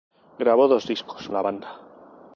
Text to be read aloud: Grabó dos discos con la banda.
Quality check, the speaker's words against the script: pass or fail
fail